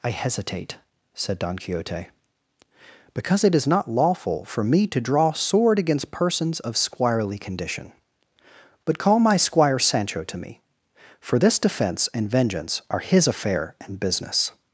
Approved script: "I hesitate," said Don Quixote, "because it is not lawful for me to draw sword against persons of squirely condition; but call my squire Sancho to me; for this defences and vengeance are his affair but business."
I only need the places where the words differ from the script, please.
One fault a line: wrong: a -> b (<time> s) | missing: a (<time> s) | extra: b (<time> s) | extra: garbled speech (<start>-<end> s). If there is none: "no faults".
wrong: defences -> defence (11.6 s)
wrong: but -> and (13.8 s)